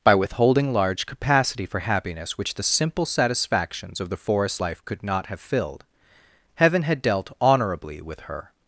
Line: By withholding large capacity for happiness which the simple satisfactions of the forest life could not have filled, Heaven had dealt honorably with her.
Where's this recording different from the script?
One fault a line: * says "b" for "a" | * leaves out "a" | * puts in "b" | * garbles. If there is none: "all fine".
all fine